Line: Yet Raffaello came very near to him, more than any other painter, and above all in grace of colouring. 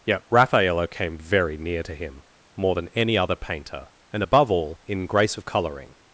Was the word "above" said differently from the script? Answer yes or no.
no